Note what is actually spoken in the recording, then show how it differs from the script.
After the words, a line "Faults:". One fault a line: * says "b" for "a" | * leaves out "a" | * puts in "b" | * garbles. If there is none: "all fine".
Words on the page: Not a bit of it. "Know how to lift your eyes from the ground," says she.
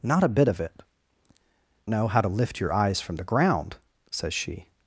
Not a bit of it. "Know how to lift your eyes from the ground," says she.
Faults:
all fine